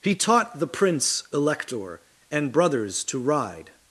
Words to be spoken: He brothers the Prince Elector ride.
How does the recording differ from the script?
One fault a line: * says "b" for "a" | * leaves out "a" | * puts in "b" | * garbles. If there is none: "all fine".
* says "taught" for "brothers"
* puts in "and brothers to"